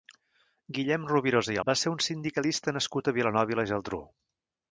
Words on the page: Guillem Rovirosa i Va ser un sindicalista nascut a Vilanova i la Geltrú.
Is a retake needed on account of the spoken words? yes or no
no